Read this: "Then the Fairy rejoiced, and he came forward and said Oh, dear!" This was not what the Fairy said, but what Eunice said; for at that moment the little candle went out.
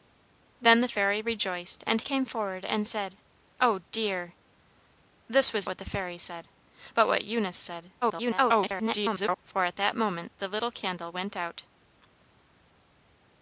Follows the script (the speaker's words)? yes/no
no